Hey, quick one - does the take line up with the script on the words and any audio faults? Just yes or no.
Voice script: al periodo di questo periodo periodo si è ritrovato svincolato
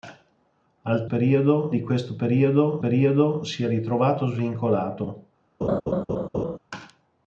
no